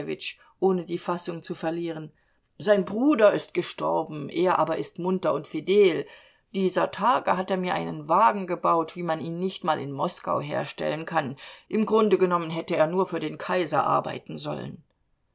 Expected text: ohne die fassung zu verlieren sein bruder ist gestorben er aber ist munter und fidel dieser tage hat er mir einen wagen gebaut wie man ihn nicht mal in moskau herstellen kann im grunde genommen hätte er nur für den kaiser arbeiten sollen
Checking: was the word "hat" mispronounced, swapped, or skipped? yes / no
no